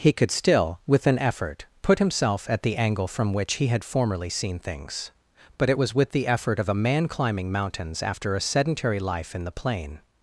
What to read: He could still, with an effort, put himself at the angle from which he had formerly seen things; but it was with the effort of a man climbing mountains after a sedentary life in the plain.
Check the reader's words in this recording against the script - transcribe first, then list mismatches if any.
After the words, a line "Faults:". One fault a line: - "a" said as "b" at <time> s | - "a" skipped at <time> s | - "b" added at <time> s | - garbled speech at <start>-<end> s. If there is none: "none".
He could still, with an effort, put himself at the angle from which he had formerly seen things; but it was with the effort of a man climbing mountains after a sedentary life in the plain.
Faults:
none